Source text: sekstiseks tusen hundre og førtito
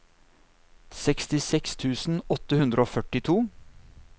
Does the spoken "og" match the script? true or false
true